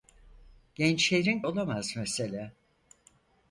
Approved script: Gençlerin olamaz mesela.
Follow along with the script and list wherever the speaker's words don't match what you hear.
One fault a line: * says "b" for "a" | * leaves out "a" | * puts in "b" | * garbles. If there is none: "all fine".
all fine